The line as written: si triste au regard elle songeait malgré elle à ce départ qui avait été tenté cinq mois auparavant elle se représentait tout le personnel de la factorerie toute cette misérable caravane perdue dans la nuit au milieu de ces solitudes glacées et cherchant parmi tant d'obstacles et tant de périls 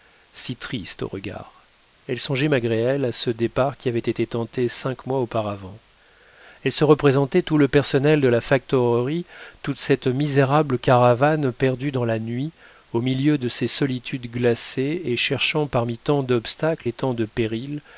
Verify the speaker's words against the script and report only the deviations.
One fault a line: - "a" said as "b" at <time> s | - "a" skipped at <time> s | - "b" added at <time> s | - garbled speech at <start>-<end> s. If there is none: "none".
none